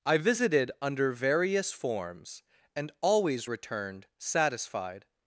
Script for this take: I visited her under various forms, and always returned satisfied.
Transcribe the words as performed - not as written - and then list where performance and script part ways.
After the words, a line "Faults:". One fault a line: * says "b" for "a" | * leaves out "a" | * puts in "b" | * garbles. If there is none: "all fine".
I visited under various forms, and always returned satisfied.
Faults:
* leaves out "her"